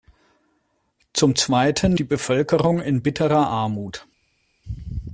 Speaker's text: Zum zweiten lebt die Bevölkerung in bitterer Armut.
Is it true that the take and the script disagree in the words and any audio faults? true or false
true